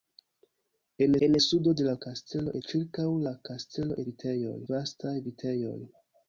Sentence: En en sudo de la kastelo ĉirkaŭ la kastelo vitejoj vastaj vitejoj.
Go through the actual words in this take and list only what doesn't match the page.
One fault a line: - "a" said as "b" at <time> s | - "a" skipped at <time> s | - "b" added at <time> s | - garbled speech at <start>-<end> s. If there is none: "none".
none